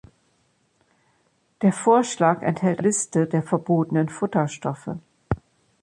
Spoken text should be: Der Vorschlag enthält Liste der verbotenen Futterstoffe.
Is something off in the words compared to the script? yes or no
no